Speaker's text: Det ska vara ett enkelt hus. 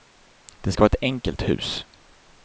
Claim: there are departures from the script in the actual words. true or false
false